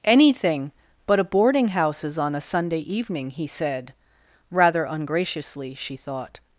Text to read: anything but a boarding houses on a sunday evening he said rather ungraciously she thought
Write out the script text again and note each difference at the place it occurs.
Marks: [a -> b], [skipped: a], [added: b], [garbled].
anything but a boarding houses on a sunday evening he said rather ungraciously she thought